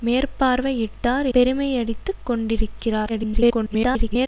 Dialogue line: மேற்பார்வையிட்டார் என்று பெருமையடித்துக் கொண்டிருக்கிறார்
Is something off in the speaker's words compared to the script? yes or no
yes